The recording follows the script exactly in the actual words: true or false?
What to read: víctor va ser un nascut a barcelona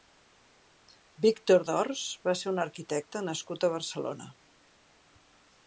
false